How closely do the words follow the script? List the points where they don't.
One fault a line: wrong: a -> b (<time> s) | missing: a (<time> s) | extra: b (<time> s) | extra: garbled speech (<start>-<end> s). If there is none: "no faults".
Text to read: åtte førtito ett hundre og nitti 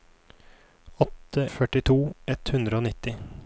no faults